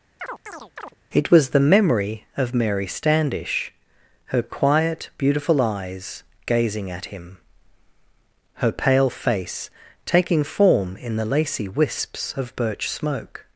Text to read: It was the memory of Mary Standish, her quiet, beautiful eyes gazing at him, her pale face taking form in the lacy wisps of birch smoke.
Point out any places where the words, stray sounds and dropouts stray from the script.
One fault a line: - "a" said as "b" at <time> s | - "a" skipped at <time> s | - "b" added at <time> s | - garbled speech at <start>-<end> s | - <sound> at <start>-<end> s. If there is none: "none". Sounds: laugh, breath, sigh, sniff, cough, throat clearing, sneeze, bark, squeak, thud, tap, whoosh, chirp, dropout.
- chirp at 0.2-0.9 s